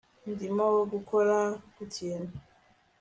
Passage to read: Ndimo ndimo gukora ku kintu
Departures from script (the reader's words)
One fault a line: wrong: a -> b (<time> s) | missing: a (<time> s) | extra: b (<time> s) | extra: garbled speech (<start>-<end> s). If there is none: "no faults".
missing: ndimo (0.7 s)